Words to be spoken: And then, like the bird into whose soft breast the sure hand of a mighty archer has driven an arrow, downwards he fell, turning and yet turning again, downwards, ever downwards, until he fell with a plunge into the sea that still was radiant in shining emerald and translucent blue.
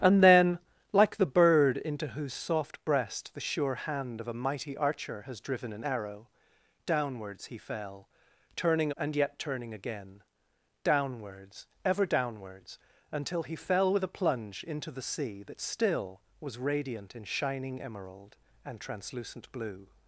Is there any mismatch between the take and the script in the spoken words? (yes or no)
no